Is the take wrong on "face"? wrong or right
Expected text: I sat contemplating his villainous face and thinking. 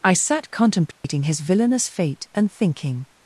wrong